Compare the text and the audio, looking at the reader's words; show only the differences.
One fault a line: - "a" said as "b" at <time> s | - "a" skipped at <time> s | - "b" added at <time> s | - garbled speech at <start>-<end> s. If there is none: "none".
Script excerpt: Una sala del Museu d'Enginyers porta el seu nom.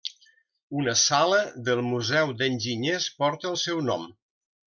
none